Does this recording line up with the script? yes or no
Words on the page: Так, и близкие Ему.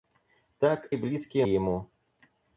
yes